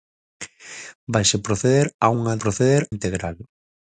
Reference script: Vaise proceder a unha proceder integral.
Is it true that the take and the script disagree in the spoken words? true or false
false